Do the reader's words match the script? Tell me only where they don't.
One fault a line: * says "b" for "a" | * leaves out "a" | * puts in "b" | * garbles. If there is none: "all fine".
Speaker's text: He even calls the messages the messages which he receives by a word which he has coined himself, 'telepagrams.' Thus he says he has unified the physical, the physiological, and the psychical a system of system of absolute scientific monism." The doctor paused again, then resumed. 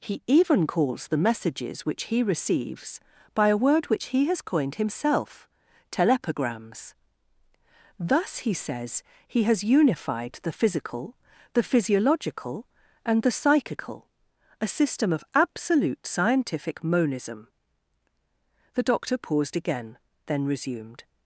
* leaves out "the messages"
* leaves out "system of"